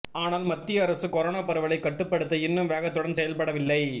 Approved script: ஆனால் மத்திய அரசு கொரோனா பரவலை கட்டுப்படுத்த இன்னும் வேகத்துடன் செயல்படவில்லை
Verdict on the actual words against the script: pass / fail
pass